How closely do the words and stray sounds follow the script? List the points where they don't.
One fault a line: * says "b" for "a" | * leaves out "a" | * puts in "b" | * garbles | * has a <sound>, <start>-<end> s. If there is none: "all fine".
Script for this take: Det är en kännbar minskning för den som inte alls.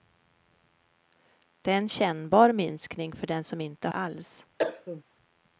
* has a cough, 4.6-5.0 s